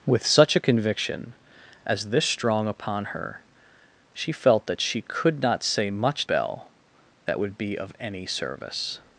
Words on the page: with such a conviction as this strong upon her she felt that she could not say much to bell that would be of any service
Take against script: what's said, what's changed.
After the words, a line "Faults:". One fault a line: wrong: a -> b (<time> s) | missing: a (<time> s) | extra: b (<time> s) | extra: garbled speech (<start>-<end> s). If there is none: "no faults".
with such a conviction as this strong upon her she felt that she could not say much bell that would be of any service
Faults:
missing: to (6.2 s)